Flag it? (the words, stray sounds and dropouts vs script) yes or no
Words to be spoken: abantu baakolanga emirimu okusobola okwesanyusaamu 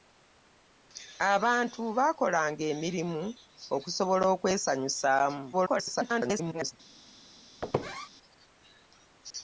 yes